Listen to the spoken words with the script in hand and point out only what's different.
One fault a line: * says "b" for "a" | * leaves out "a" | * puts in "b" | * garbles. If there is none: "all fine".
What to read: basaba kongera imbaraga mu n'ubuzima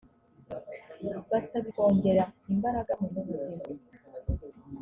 all fine